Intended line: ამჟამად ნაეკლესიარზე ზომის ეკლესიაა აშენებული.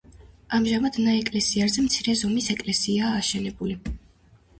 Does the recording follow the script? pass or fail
fail